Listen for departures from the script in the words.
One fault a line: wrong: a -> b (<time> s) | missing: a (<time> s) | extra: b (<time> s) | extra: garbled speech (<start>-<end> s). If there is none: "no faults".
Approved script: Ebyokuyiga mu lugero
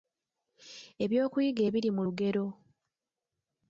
extra: ebiri (1.7 s)